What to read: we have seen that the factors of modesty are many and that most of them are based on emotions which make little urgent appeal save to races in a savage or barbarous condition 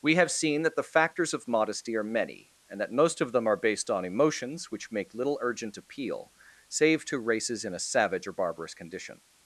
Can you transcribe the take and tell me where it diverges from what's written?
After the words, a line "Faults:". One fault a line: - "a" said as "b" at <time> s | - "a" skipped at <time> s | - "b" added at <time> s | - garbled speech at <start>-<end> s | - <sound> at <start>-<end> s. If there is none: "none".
we have seen that the factors of modesty are many and that most of them are based on emotions which make little urgent appeal save to races in a savage or barbarous condition
Faults:
none